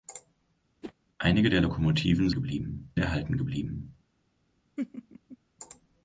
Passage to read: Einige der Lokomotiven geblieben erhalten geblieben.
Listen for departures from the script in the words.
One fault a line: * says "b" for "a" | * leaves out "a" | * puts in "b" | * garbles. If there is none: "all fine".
all fine